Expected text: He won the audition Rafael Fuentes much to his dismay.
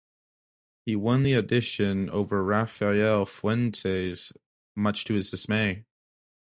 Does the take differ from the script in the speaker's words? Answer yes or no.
yes